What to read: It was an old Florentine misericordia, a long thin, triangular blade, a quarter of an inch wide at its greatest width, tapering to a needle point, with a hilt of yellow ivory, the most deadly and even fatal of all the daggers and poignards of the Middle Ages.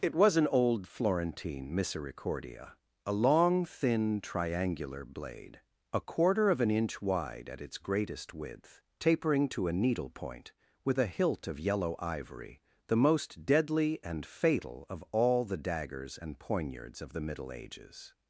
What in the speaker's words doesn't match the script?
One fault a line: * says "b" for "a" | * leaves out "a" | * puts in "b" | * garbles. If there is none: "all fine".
* leaves out "even"